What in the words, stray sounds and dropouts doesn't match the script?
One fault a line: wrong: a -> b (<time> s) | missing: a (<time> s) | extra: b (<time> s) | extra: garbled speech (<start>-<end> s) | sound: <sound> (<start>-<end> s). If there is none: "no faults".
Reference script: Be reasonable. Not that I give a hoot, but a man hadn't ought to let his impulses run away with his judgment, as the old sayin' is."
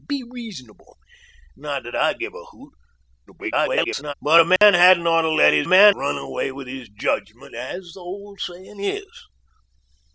extra: garbled speech (3.3-4.1 s)
sound: dropout (4.6-4.6 s)
wrong: impulses -> man (5.6 s)